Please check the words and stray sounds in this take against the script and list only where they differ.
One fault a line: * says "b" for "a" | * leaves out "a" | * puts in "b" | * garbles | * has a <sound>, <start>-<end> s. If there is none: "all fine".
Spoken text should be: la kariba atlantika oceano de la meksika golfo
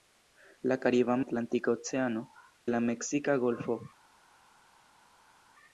all fine